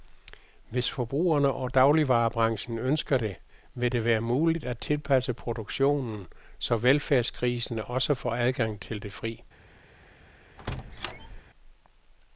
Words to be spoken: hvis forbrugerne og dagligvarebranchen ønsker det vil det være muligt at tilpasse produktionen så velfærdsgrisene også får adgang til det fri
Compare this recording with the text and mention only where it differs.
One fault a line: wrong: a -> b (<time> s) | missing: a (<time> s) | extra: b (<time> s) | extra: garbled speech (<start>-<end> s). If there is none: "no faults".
no faults